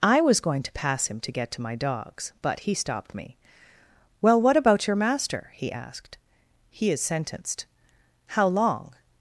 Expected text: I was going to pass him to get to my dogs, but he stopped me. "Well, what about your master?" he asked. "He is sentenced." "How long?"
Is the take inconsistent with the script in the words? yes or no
no